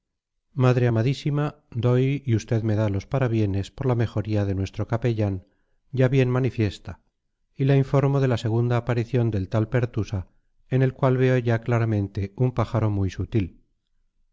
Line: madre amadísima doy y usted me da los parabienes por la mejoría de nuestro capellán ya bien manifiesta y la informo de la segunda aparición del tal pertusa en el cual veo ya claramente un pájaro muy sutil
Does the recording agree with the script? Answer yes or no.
yes